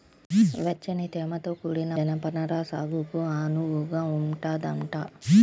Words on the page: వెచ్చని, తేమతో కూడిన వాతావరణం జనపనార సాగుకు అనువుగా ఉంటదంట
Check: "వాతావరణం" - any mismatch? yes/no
yes